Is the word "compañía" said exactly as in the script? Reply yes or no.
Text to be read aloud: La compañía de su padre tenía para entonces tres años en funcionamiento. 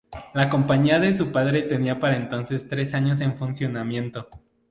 yes